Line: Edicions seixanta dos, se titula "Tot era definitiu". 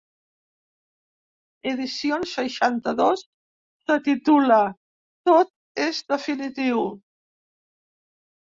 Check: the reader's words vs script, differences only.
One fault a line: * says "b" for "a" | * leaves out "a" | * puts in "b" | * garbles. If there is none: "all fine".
* says "és" for "era"